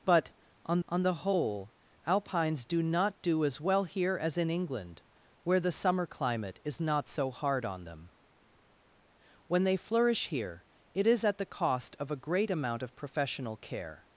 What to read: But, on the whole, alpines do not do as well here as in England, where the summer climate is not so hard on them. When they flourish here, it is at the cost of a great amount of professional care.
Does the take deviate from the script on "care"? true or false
false